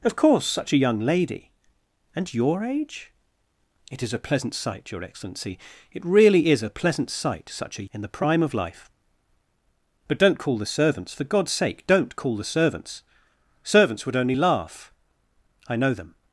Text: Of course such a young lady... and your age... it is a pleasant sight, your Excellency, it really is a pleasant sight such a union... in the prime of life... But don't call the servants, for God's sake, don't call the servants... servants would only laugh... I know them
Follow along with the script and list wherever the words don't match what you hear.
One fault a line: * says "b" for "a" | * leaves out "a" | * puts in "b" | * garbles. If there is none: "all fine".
* leaves out "union"